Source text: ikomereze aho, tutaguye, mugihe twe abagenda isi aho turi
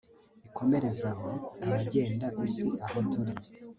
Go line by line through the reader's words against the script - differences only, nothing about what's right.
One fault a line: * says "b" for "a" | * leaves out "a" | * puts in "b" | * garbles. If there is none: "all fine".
* leaves out "tutaguye mugihe twe"